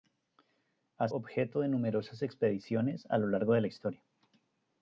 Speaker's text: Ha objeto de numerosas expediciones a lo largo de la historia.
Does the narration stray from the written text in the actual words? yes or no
no